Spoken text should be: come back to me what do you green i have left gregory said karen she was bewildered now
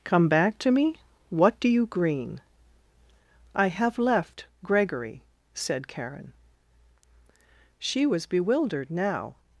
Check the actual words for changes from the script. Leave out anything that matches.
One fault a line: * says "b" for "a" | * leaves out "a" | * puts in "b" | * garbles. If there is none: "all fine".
all fine